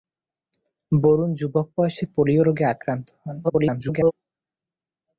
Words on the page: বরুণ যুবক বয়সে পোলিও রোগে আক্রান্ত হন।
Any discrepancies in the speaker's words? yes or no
yes